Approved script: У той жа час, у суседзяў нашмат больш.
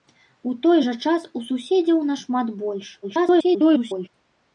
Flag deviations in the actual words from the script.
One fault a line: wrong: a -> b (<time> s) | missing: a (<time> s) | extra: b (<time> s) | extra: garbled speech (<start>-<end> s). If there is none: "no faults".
extra: garbled speech (3.0-4.1 s)